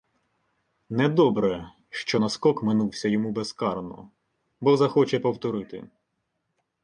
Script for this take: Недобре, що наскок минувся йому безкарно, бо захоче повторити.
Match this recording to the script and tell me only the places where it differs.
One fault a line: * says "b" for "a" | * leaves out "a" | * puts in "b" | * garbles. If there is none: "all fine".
all fine